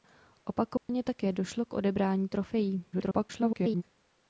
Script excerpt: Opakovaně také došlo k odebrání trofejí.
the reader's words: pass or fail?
fail